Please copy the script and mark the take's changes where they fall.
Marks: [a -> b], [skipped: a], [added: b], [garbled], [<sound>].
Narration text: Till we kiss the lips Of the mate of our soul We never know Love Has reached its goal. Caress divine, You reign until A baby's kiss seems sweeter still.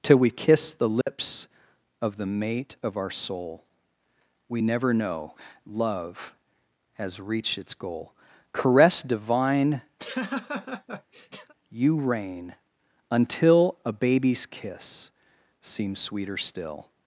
Till we kiss the lips [dropout] Of the mate of our soul We never know Love Has reached its goal. Caress divine, [laugh] You reign until A baby's kiss seems sweeter still.